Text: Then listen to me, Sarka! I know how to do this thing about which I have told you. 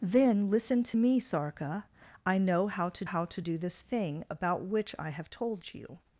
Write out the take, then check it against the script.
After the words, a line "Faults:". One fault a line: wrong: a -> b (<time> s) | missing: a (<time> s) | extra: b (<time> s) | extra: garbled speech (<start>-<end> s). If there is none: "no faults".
Then listen to me, Sarka! I know how to how to do this thing about which I have told you.
Faults:
extra: how to (3.0 s)